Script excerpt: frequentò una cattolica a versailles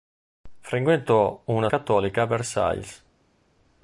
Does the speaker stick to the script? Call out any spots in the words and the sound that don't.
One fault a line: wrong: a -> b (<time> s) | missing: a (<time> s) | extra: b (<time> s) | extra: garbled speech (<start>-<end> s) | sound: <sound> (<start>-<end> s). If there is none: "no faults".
no faults